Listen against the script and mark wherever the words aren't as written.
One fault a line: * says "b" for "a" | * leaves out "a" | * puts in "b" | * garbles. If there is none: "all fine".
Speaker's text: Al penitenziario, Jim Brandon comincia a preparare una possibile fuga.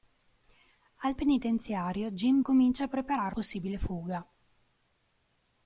* leaves out "Brandon"
* leaves out "una"